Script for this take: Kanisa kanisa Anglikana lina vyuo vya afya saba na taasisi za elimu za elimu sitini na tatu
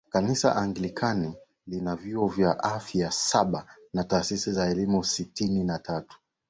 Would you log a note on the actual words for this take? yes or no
yes